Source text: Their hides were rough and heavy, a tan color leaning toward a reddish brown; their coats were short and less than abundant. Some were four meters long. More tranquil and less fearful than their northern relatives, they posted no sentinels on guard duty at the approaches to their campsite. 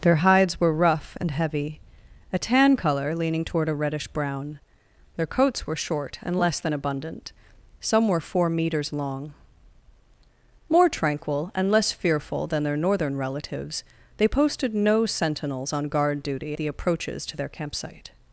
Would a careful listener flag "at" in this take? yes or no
yes